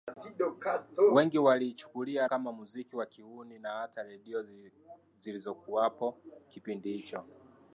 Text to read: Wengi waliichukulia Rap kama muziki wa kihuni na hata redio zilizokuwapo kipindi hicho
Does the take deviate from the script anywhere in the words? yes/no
yes